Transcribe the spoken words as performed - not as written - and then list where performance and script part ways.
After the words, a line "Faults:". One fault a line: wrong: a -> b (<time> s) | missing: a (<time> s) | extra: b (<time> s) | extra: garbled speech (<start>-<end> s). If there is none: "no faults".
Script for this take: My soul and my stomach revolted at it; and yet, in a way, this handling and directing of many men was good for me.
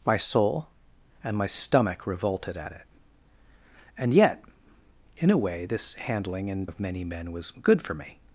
My soul and my stomach revolted at it; and yet, in a way, this handling and of many men was good for me.
Faults:
missing: directing (6.7 s)